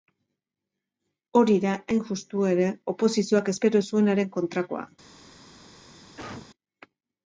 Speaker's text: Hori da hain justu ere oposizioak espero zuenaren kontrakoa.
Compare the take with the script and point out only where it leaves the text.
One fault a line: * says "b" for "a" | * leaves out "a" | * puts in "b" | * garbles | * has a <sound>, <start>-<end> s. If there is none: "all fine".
* has a cough, 6.2-6.5 s